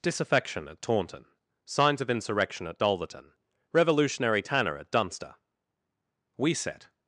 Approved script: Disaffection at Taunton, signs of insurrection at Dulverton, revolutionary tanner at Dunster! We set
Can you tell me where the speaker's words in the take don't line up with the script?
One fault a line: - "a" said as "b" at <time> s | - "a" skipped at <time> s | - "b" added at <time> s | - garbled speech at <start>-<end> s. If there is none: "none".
none